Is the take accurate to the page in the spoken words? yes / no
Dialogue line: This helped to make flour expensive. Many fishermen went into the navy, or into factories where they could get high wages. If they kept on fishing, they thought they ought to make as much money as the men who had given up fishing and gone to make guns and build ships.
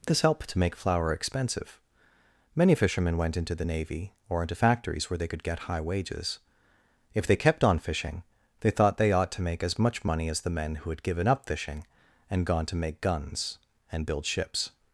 yes